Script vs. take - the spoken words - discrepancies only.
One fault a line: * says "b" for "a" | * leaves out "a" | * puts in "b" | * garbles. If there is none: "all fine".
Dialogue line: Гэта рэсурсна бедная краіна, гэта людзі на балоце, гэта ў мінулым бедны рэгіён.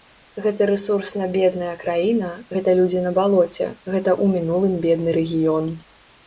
all fine